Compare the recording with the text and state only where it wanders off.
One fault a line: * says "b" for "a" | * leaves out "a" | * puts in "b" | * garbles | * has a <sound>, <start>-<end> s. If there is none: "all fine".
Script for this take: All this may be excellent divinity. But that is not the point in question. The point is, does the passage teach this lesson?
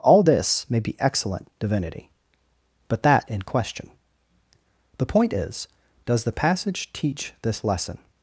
* leaves out "is not the point"